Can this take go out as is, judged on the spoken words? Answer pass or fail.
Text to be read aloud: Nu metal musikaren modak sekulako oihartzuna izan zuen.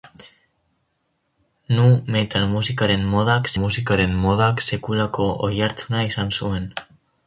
fail